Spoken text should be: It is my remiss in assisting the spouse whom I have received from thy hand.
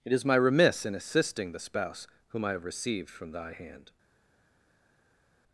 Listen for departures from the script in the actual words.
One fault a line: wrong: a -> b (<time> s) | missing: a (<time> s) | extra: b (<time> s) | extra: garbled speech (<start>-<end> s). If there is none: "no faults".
no faults